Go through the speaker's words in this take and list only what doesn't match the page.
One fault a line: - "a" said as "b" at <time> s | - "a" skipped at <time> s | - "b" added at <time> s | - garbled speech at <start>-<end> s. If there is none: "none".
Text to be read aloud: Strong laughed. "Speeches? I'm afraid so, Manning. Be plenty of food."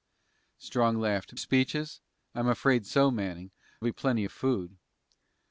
none